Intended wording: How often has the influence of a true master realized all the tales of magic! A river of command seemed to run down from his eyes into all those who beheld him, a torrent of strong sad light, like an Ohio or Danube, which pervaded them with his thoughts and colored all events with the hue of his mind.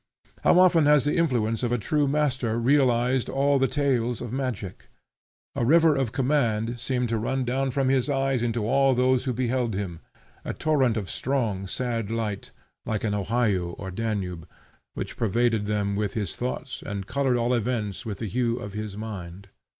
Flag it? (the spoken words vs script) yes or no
no